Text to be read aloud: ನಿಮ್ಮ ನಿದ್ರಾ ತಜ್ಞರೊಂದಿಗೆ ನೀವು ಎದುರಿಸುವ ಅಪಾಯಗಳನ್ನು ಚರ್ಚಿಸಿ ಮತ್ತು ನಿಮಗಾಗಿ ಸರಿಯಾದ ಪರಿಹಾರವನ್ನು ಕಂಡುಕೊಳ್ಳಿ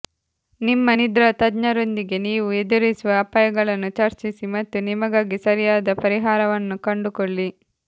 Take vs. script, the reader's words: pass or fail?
pass